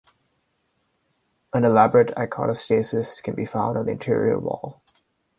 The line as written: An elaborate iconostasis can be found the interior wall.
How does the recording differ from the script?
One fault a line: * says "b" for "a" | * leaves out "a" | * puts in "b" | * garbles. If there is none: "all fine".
* puts in "on"